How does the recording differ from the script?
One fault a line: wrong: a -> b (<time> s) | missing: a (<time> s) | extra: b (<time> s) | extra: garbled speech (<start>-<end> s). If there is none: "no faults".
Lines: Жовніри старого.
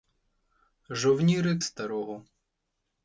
no faults